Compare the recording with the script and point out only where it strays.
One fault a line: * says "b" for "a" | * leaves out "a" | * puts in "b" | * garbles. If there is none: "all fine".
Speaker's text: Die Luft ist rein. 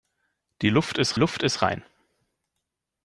* puts in "Luft ist"